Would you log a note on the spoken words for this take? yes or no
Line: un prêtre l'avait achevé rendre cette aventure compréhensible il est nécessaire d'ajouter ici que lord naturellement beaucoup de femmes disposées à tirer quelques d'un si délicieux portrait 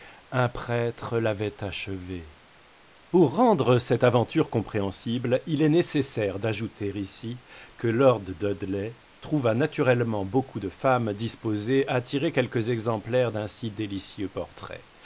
yes